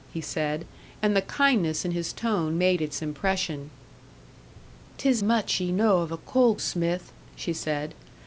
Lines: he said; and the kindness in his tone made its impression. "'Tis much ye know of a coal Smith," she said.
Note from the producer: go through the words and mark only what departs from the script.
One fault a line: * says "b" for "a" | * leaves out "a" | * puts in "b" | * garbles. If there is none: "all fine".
all fine